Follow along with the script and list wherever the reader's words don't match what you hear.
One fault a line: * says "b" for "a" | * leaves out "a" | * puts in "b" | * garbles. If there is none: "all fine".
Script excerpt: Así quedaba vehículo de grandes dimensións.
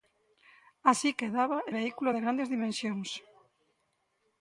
all fine